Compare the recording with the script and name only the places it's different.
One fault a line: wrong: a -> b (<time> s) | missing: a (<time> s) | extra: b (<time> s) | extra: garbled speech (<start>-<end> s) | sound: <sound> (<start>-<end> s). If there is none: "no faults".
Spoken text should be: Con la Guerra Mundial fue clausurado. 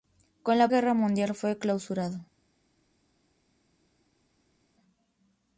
no faults